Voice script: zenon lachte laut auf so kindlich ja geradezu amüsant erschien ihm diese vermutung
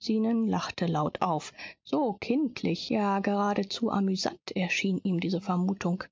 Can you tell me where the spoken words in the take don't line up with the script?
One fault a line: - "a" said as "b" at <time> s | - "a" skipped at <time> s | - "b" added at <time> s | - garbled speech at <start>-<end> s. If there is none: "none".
none